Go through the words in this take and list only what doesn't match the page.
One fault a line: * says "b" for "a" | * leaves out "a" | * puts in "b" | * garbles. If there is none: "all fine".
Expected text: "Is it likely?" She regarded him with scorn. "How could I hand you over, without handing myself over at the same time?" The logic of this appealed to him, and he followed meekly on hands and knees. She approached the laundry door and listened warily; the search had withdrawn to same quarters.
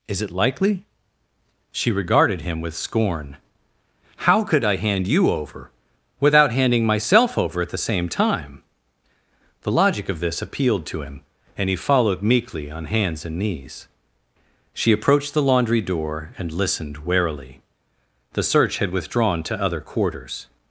* says "other" for "same"